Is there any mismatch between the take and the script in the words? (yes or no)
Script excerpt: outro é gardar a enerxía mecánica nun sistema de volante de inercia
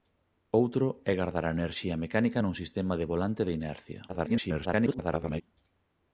yes